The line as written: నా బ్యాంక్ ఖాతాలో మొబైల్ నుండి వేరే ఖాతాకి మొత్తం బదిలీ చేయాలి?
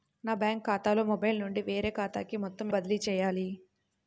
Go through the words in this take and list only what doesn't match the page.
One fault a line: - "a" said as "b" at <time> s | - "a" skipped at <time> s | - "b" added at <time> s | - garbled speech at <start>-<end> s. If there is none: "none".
none